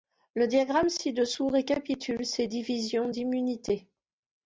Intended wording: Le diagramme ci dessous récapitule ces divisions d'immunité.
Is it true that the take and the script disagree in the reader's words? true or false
false